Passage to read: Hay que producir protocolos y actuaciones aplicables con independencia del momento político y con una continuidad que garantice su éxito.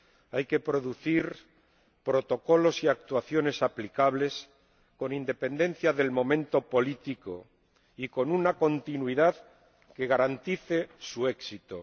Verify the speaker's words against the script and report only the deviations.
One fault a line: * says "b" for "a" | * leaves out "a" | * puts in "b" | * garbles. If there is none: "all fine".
all fine